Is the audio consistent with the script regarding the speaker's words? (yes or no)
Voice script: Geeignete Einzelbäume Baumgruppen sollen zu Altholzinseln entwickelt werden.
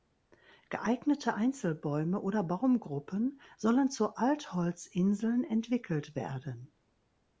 no